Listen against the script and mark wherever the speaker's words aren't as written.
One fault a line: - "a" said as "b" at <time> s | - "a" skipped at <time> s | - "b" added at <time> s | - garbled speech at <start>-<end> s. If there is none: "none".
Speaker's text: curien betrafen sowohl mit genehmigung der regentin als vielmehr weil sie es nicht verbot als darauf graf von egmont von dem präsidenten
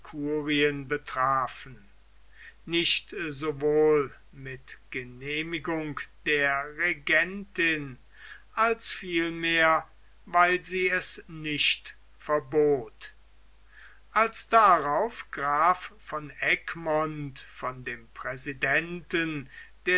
- "nicht" added at 2.6 s